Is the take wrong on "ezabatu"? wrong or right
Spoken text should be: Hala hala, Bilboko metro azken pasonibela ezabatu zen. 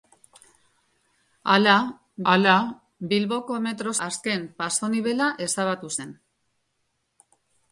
right